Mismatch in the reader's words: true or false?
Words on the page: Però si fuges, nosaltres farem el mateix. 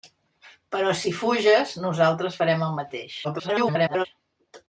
true